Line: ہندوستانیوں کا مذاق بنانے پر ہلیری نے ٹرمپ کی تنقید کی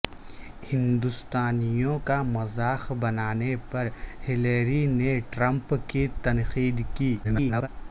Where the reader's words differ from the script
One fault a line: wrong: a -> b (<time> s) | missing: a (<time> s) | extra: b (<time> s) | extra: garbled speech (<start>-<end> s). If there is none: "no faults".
extra: garbled speech (7.2-7.7 s)